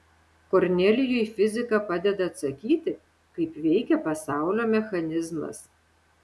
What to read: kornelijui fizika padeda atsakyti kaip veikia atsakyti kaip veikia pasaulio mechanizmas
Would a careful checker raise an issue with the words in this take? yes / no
yes